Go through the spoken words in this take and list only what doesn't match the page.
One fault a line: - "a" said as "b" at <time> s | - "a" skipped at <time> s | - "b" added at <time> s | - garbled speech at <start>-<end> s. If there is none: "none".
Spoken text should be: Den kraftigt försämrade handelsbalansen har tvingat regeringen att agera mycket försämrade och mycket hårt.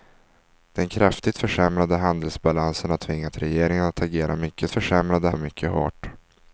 none